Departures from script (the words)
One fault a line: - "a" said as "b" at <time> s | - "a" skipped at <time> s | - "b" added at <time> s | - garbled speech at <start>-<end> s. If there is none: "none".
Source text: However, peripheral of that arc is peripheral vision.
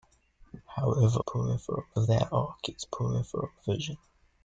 none